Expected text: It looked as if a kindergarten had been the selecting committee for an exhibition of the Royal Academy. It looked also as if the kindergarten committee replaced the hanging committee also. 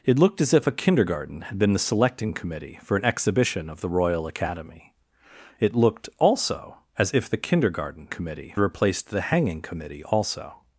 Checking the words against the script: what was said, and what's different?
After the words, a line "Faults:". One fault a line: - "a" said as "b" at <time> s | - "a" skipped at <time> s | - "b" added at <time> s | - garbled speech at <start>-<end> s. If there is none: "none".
It looked as if a kindergarten had been the selecting committee for an exhibition of the Royal Academy. It looked also as if the kindergarten committee replaced the hanging committee also.
Faults:
none